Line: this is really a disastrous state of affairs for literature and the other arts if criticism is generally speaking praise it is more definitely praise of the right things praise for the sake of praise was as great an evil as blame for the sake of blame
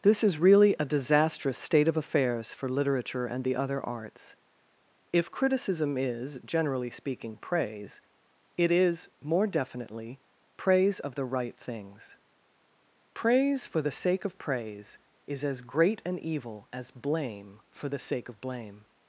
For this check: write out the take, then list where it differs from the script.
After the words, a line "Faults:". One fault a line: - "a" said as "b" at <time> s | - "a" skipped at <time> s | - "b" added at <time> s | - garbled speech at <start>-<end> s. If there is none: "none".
this is really a disastrous state of affairs for literature and the other arts if criticism is generally speaking praise it is more definitely praise of the right things praise for the sake of praise is as great an evil as blame for the sake of blame
Faults:
- "was" said as "is" at 15.3 s